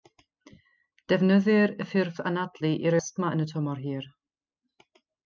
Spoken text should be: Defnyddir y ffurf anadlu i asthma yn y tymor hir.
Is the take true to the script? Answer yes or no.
yes